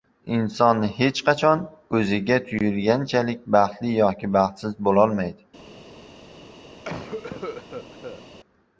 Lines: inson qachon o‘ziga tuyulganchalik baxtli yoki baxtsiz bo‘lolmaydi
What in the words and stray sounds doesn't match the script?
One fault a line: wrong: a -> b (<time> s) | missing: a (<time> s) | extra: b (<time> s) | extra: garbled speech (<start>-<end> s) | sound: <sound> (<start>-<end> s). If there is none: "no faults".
extra: hech (1.0 s)
sound: cough (6.8-8.2 s)